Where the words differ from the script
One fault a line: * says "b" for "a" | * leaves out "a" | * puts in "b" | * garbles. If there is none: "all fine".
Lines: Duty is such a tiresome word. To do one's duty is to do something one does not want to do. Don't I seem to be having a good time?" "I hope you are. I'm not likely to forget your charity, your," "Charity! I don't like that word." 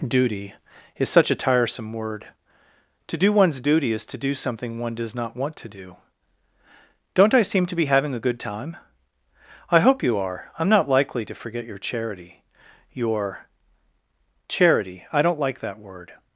all fine